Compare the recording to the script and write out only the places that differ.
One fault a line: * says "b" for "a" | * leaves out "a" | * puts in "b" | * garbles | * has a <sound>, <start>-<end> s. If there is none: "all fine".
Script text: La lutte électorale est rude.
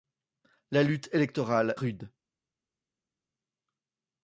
* leaves out "est"